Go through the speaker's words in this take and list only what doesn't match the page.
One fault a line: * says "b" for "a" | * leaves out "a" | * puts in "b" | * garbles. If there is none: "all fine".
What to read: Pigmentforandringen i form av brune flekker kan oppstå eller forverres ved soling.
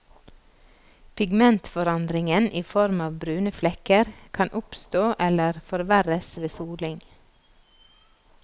all fine